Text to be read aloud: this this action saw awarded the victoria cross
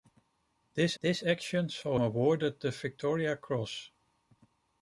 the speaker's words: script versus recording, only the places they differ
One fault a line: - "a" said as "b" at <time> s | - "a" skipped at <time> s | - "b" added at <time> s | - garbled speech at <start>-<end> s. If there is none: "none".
none